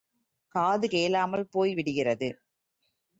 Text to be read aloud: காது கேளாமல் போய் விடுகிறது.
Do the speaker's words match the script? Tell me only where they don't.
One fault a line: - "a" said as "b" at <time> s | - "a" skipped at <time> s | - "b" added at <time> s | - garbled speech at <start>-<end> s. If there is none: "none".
none